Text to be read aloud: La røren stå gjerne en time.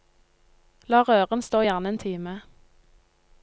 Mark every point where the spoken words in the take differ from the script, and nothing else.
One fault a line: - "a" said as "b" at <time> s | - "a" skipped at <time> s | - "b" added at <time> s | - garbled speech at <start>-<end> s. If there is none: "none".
none